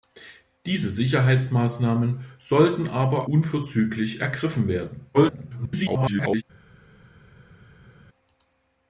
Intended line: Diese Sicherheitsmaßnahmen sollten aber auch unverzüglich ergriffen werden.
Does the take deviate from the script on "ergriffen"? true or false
false